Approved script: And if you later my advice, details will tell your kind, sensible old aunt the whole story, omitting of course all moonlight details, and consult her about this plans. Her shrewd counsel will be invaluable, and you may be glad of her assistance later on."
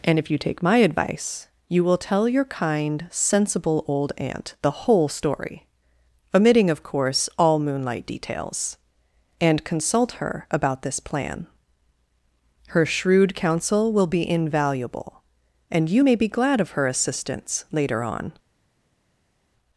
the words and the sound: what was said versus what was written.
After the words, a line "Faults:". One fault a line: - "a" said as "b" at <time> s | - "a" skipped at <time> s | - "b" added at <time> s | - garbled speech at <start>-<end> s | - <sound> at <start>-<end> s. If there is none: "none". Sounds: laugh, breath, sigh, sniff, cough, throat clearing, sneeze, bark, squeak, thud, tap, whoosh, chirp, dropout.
And if you take my advice, you will tell your kind, sensible old aunt the whole story, omitting of course all moonlight details, and consult her about this plan. Her shrewd counsel will be invaluable, and you may be glad of her assistance later on."
Faults:
- "later" said as "take" at 0.4 s
- "details" said as "you" at 1.7 s
- "plans" said as "plan" at 11.0 s